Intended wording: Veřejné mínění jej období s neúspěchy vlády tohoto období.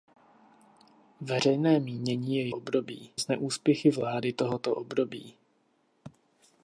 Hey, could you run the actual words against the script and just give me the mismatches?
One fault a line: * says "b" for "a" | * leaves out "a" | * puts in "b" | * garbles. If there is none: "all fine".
all fine